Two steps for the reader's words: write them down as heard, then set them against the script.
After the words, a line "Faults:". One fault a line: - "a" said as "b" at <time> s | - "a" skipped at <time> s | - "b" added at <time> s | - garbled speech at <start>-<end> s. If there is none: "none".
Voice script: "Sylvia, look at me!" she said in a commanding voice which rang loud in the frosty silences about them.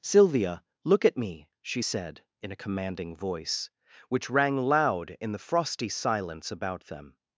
"Sylvia, look at me!" she said in a commanding voice which rang loud in the frosty silence about them.
Faults:
- "silences" said as "silence" at 5.9 s